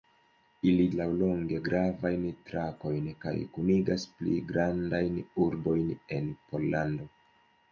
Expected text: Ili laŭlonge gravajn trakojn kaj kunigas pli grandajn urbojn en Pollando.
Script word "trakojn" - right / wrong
right